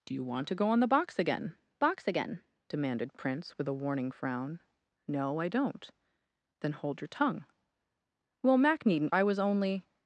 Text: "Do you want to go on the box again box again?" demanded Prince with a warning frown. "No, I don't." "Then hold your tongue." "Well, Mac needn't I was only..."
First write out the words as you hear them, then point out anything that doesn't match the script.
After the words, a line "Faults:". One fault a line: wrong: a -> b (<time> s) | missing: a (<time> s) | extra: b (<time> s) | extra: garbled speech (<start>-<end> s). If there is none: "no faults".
"Do you want to go on the box again box again?" demanded Prince with a warning frown. "No, I don't." "Then hold your tongue." "Well, Mac needn't I was only..."
Faults:
no faults